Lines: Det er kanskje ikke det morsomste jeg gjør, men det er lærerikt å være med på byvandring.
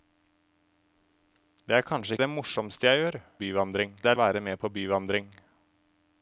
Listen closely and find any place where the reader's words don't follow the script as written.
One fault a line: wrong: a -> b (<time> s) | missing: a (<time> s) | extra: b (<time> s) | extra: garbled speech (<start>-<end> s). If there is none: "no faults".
missing: ikke (2.2 s)
wrong: men -> byvandring (3.4 s)
missing: lærerikt (4.2 s)